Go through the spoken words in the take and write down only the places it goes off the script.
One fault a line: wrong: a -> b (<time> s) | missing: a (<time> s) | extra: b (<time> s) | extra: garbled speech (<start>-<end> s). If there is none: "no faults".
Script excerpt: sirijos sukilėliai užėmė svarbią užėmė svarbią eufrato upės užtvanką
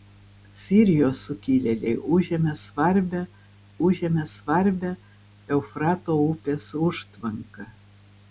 no faults